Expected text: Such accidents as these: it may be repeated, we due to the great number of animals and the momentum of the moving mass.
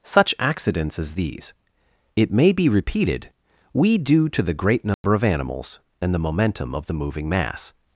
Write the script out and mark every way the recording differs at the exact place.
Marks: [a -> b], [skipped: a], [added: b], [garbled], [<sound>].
Such accidents as these: it may be repeated, we due to the great number [dropout] of animals and the momentum of the moving mass.